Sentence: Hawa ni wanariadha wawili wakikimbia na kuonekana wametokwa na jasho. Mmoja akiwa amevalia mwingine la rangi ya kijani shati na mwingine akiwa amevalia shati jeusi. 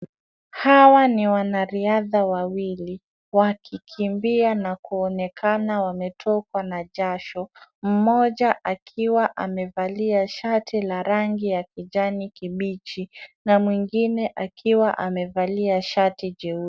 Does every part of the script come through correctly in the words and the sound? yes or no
no